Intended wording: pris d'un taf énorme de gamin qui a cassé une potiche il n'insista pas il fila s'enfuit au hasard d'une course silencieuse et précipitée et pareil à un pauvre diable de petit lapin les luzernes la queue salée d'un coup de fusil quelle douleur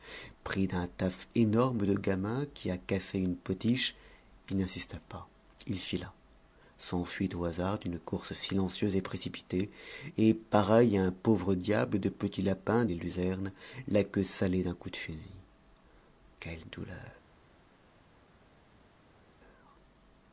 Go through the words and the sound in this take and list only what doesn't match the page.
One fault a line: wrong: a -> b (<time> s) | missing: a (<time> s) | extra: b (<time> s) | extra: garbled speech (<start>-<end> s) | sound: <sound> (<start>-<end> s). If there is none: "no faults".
no faults